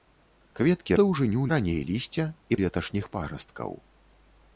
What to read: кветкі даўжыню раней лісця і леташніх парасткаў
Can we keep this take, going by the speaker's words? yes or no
yes